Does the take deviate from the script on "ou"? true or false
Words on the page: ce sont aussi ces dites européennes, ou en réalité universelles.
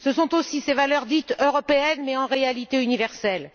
true